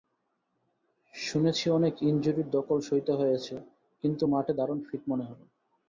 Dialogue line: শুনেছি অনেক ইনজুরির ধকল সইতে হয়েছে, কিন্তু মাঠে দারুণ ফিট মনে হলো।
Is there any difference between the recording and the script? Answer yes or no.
no